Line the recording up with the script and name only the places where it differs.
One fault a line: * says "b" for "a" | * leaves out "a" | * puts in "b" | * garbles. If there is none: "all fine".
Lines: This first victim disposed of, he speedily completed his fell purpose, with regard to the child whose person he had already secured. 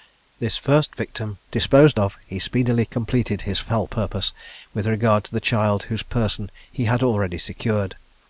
all fine